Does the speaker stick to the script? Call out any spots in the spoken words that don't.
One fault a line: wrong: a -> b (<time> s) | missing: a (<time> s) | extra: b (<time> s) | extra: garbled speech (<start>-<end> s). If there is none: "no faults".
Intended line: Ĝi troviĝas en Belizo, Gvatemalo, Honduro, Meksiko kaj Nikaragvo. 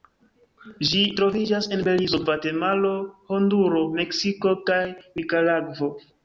no faults